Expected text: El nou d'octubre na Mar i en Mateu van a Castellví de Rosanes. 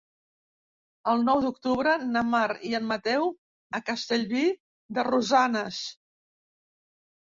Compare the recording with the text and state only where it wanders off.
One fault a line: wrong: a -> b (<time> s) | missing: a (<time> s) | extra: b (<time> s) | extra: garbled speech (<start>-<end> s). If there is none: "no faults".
missing: van (3.3 s)